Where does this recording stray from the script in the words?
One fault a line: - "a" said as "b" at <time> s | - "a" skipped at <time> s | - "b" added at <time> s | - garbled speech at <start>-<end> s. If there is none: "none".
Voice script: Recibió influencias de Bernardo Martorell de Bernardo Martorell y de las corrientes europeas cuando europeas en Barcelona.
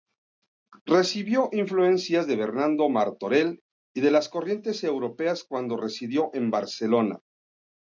- "de Bernardo Martorell" skipped at 3.6 s
- "europeas" said as "residió" at 5.8 s